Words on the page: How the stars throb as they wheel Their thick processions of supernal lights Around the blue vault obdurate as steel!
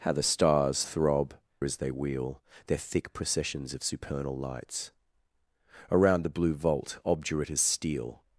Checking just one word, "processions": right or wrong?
right